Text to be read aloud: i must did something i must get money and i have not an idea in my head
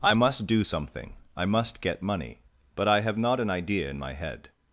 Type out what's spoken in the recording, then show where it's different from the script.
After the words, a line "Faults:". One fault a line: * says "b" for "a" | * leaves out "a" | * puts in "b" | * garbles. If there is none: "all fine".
i must do something i must get money but i have not an idea in my head
Faults:
* says "do" for "did"
* says "but" for "and"